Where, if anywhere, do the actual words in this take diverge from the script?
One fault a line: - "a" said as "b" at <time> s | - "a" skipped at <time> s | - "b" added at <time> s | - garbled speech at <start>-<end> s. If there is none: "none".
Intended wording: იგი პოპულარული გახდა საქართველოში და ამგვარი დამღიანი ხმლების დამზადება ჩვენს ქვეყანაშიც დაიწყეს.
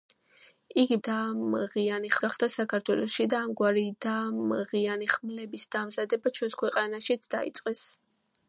- "პოპულარული" said as "დამღიანი" at 1.1 s